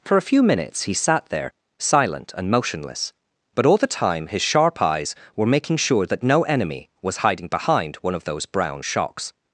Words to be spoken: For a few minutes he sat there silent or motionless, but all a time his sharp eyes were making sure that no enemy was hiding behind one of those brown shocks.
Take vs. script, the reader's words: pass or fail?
fail